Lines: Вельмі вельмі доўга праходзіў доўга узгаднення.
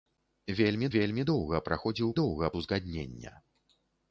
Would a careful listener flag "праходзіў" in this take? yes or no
no